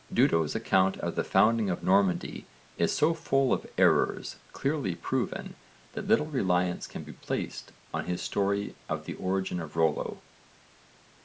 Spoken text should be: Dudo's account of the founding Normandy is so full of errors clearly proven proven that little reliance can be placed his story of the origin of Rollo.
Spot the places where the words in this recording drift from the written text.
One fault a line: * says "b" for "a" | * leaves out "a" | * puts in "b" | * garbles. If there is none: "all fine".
* puts in "of"
* leaves out "proven"
* puts in "on"